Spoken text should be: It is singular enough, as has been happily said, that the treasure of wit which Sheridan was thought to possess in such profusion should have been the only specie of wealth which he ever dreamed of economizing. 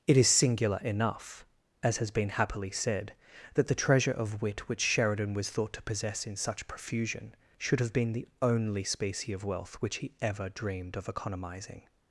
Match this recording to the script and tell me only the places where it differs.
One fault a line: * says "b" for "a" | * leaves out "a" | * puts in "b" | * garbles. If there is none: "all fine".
all fine